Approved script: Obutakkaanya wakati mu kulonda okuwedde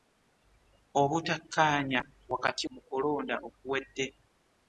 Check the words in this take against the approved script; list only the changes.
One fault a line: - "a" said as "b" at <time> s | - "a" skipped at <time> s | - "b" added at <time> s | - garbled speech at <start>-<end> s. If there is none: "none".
none